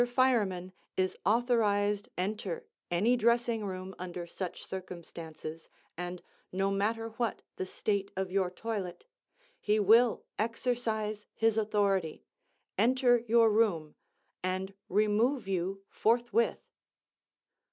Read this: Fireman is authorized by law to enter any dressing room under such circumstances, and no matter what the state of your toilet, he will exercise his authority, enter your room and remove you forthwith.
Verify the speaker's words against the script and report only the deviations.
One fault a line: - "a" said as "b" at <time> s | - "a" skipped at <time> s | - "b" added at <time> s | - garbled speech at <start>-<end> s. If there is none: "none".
- "by law to" skipped at 2.1 s